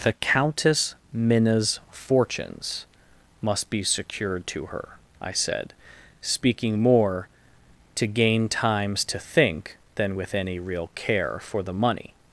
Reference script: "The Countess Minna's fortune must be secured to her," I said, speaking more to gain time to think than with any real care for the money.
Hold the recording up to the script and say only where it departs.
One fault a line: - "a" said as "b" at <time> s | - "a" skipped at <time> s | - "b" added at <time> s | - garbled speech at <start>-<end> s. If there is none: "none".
- "fortune" said as "fortunes" at 1.9 s
- "time" said as "times" at 8.5 s